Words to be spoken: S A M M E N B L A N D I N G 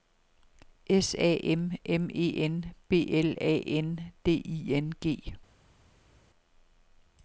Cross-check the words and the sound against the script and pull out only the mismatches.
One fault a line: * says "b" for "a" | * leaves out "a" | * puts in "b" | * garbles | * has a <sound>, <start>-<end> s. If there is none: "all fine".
all fine